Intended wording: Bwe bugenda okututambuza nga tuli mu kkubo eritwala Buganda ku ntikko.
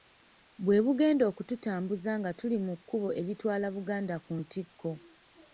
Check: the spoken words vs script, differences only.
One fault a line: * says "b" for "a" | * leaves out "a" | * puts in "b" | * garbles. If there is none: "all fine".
all fine